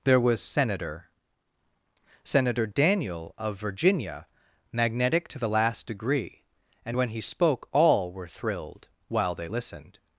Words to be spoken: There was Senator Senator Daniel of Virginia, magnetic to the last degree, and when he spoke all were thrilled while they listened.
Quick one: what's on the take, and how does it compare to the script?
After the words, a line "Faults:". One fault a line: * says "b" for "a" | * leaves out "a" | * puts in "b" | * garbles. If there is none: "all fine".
There was Senator Senator Daniel of Virginia, magnetic to the last degree, and when he spoke all were thrilled while they listened.
Faults:
all fine